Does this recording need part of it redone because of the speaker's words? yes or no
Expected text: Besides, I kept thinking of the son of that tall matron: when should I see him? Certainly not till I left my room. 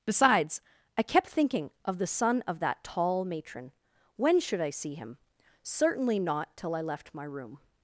no